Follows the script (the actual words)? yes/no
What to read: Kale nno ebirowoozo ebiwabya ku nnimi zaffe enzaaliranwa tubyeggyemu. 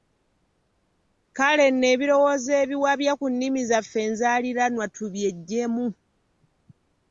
yes